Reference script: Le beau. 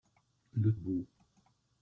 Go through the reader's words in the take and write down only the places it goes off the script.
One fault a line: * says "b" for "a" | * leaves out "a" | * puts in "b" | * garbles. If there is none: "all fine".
all fine